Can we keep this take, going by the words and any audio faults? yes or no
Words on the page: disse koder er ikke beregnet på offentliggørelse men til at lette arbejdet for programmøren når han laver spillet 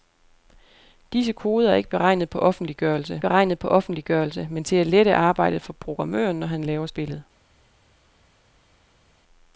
no